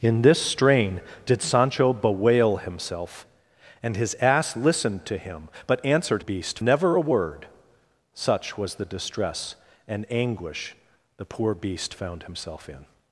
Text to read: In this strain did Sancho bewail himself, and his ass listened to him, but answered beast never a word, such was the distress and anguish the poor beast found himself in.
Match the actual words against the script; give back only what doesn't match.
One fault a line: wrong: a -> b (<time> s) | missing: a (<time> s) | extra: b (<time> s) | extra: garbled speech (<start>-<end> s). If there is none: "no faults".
no faults